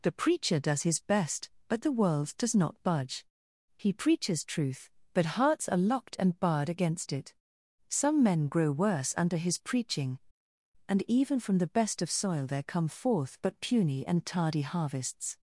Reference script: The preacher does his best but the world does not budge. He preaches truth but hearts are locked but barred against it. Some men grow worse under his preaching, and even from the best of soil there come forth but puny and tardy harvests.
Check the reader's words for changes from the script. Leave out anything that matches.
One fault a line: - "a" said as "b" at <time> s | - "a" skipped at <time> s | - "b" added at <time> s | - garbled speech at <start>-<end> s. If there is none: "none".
- "but" said as "and" at 6.2 s